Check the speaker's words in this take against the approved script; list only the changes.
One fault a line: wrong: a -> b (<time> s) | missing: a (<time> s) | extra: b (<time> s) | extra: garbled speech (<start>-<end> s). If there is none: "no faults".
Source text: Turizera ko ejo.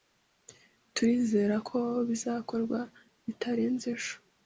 extra: bizakorwa bitarenze (2.1 s)